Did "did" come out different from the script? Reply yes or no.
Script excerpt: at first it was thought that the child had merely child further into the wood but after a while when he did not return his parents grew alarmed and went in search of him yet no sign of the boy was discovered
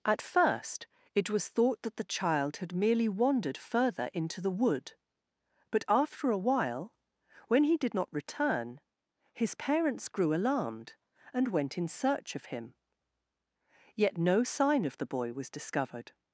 no